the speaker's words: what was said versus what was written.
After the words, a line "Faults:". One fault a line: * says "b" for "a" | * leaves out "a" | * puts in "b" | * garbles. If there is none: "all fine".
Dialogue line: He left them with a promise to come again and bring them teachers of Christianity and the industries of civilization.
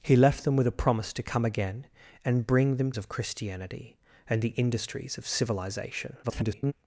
He left them with a promise to come again and bring them of Christianity and the industries of civilization. [garbled]
Faults:
* leaves out "teachers"
* garbles